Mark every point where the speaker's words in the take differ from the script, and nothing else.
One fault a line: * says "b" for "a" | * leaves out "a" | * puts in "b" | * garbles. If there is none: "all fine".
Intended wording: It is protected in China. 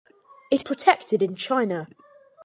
* leaves out "is"